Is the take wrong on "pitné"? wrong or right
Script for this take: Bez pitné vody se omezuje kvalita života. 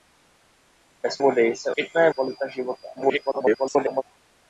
wrong